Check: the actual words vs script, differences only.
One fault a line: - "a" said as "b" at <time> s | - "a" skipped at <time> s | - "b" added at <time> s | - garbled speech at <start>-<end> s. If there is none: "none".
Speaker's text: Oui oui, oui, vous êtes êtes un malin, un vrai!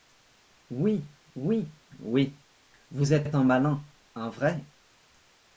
none